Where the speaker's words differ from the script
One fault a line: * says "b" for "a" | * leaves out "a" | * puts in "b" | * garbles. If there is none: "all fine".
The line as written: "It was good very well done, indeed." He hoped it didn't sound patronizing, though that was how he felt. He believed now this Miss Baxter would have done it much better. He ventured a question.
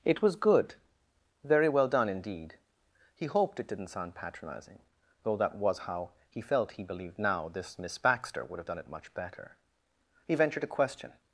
all fine